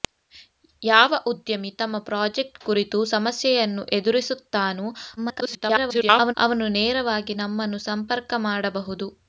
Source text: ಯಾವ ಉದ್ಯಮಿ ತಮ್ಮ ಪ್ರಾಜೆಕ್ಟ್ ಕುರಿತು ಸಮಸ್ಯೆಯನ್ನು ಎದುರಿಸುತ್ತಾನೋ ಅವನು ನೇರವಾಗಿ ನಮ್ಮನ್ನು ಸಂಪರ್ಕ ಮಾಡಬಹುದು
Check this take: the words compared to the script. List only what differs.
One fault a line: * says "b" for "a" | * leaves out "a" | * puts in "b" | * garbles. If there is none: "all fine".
* garbles